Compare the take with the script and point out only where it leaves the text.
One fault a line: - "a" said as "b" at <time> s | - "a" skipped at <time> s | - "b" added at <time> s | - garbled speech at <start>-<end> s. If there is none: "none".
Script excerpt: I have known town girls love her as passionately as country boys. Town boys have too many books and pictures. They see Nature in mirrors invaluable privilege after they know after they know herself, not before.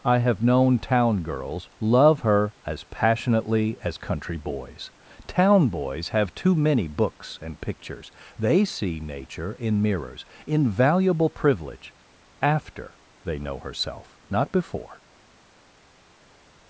- "after they know" skipped at 13.6 s